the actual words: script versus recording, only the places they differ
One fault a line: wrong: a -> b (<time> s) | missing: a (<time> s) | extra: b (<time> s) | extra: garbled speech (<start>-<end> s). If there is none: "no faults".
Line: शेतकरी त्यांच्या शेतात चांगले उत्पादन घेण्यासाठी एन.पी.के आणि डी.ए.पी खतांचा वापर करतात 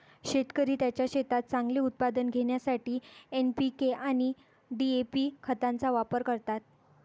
no faults